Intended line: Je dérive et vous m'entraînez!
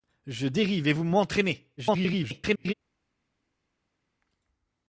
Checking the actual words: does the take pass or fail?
fail